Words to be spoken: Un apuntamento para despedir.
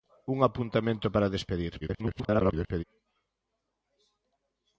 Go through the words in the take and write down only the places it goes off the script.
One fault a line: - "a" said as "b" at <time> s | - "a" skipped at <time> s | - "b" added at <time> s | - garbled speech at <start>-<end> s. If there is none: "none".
- garbled speech at 1.8-2.8 s